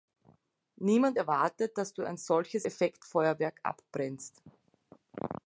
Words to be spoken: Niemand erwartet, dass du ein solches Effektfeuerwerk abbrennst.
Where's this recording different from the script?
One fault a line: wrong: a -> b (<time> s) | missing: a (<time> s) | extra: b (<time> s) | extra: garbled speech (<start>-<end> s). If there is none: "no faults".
no faults